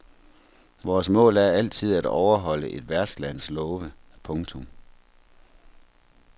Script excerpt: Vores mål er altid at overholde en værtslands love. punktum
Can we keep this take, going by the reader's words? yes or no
no